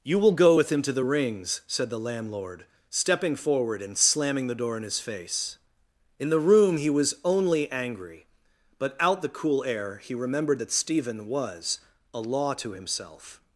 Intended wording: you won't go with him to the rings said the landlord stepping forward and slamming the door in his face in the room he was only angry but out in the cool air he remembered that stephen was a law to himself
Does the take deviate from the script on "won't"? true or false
true